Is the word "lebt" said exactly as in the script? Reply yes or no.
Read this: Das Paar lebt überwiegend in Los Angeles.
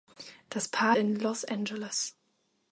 no